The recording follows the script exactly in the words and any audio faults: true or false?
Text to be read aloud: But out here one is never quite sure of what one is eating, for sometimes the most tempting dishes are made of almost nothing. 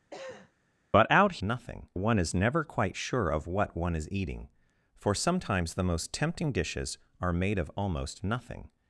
false